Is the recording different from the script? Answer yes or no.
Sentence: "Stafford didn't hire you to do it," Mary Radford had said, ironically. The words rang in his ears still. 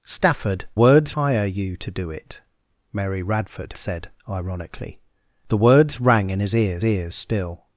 yes